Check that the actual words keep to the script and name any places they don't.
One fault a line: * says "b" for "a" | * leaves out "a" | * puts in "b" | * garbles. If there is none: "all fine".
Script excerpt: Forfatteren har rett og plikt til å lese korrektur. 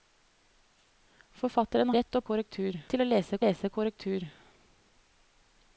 * leaves out "har"
* says "korrektur" for "plikt"
* puts in "lese"